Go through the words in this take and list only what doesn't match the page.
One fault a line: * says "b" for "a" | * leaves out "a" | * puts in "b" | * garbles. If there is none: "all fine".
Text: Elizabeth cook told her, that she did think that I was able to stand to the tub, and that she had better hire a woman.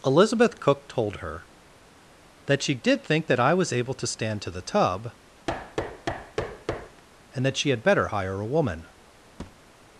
all fine